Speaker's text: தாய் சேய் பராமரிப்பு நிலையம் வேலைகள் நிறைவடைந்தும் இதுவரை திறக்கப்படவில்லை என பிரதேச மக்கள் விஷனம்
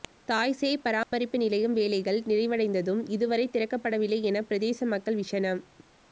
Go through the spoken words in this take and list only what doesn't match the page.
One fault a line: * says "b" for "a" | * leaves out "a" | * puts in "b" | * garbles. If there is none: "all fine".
all fine